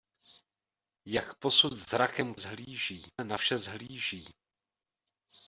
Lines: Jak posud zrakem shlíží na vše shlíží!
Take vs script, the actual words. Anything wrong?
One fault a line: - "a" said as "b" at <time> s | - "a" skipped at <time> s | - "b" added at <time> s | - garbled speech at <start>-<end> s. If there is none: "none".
none